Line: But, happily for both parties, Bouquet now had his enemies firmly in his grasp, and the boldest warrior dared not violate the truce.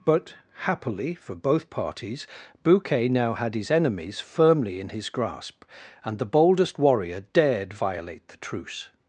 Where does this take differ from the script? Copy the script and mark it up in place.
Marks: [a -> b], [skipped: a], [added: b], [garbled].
But, happily for both parties, Bouquet now had his enemies firmly in his grasp, and the boldest warrior dared [skipped: not] violate the truce.